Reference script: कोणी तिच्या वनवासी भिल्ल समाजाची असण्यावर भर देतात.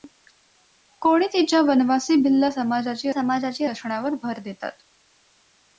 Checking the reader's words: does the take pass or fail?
fail